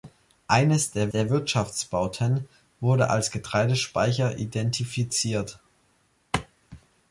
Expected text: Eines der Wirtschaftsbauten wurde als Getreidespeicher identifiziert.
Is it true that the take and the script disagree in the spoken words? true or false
true